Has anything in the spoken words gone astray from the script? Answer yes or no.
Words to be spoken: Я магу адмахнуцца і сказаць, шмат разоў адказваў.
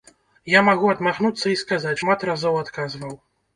no